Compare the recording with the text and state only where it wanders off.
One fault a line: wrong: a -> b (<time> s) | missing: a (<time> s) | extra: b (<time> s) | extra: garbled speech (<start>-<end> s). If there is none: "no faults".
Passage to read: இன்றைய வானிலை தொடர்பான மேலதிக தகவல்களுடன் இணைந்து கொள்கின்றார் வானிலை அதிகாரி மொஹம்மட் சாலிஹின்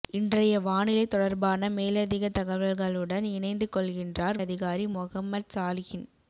missing: வானிலை (4.4 s)